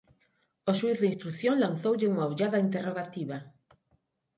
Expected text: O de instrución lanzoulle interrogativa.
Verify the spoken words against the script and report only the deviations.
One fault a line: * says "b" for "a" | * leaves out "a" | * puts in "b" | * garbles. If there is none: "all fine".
* puts in "xuíz"
* puts in "unha ollada"